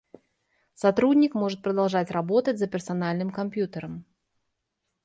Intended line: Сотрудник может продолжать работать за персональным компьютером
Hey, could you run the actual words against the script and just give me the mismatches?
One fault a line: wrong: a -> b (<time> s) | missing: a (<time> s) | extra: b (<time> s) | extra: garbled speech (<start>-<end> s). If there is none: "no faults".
no faults